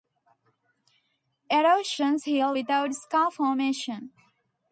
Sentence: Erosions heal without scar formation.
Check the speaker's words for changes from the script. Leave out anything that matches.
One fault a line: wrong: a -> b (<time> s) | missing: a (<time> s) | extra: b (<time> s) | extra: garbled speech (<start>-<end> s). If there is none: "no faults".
no faults